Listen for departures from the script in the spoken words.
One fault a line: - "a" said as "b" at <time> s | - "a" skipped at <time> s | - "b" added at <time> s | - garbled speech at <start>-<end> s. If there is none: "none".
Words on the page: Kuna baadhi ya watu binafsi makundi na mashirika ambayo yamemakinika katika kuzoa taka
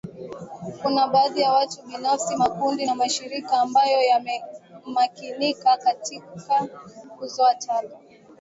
none